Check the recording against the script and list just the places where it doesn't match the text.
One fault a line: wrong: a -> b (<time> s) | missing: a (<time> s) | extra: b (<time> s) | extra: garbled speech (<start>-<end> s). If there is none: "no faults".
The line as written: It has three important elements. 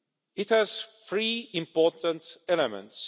no faults